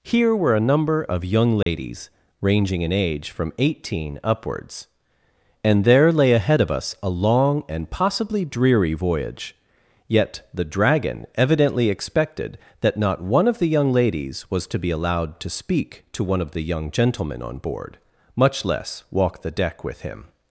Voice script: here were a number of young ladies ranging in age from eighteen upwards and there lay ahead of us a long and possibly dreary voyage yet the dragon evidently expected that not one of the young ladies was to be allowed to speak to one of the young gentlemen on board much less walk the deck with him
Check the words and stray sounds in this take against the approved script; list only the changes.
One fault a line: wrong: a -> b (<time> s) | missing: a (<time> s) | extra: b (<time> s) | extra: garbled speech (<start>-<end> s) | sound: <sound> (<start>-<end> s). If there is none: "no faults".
sound: dropout (1.6-1.7 s)